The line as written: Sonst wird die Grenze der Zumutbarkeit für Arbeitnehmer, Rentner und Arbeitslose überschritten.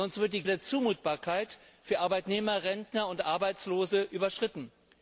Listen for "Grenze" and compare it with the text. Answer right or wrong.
wrong